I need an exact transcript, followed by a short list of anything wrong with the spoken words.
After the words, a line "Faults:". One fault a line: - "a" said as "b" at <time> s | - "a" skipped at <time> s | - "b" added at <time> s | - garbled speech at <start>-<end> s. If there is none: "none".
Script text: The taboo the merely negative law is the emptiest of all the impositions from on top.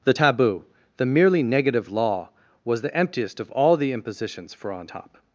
The taboo the merely negative law was the emptiest of all the impositions for on top.
Faults:
- "is" said as "was" at 2.6 s
- "from" said as "for" at 4.5 s